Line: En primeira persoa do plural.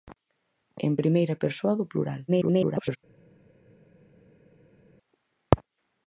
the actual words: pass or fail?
fail